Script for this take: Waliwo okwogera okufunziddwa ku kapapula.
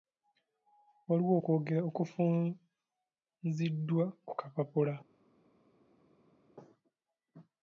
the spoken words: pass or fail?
pass